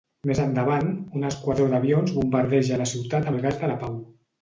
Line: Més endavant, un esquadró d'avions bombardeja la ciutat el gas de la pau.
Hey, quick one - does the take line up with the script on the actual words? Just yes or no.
yes